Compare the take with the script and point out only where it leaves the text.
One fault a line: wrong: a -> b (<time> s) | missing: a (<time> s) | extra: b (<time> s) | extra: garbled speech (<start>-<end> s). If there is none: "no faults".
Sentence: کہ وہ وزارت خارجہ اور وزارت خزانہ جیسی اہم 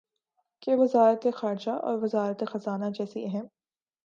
missing: وہ (0.8 s)